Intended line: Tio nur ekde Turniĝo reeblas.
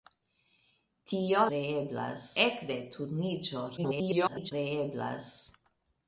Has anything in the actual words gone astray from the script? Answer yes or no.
yes